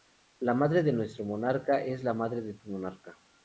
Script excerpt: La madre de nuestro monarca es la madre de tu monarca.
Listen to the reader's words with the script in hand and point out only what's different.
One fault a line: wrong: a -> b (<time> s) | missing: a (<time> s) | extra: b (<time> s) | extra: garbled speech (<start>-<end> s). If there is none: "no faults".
no faults